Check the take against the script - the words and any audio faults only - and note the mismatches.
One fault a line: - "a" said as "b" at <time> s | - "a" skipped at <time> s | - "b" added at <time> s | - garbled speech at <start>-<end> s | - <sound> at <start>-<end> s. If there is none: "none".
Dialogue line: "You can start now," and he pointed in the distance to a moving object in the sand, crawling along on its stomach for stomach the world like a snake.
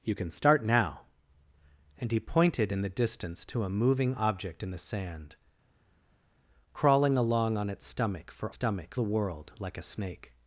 none